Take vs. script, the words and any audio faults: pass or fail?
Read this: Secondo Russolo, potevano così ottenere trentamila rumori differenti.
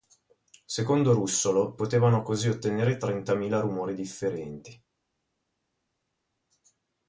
pass